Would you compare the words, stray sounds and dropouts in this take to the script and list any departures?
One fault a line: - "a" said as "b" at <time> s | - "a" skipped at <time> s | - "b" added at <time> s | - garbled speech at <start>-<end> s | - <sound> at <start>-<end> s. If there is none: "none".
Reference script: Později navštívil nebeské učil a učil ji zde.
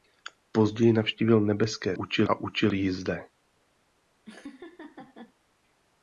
- laugh at 4.2-5.3 s